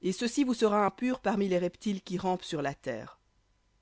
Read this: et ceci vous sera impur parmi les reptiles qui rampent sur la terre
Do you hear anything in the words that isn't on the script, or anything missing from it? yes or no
no